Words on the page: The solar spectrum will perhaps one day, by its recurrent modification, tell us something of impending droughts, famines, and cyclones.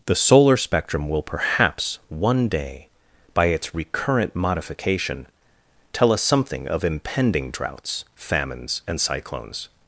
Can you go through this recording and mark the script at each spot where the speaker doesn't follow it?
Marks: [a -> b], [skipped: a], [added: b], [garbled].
The solar spectrum will perhaps one day, by its recurrent modification, tell us something of impending droughts, famines, and cyclones.